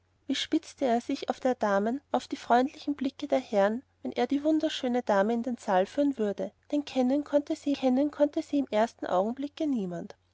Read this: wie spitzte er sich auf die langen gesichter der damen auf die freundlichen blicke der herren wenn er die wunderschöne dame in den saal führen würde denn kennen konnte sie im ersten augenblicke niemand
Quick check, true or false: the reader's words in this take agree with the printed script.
false